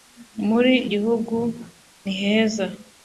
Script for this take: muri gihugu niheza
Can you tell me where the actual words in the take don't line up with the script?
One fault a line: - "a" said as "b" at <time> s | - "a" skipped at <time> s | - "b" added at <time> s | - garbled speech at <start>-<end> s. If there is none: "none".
none